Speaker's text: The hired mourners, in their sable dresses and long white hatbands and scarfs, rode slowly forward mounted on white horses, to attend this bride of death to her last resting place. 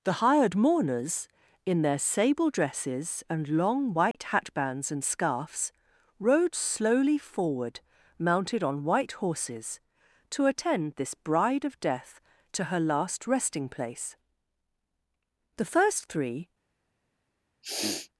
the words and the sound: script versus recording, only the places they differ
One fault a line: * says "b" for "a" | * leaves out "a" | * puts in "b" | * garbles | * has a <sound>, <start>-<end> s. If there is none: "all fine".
* has a dropout, 4.1-4.1 s
* puts in "The first three"
* has a sniff, 17.6-18.1 s